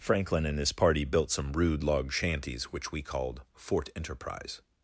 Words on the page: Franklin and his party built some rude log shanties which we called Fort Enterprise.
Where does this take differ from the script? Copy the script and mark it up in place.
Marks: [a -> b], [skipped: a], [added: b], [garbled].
Franklin and his party built some rude log shanties which we called Fort Enterprise.